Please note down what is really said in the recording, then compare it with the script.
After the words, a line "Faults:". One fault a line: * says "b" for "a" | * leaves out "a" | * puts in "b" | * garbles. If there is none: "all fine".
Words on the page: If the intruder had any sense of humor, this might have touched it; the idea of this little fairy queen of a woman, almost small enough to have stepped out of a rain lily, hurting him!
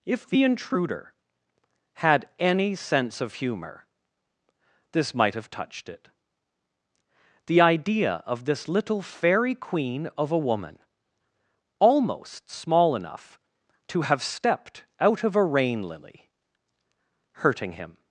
If the intruder had any sense of humor, this might have touched it; the idea of this little fairy queen of a woman, almost small enough to have stepped out of a rain lily, hurting him!
Faults:
all fine